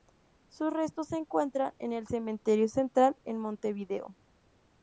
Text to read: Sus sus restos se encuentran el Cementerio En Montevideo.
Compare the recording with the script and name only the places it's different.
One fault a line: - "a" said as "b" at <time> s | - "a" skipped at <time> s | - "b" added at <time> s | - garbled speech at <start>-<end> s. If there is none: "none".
- "sus" skipped at 0.7 s
- "en" added at 1.8 s
- "Central" added at 2.7 s